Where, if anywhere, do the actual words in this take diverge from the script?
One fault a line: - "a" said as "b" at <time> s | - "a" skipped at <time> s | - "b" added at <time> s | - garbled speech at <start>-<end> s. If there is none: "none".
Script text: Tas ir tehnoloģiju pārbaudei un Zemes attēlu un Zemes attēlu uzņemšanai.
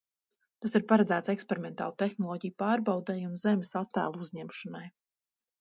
- "paredzēts eksperimentālu" added at 0.9 s
- "un Zemes attēlu" skipped at 4.3 s